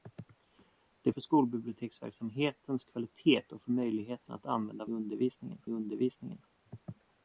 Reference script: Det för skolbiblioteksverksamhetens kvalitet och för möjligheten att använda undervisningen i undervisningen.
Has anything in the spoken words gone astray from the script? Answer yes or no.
no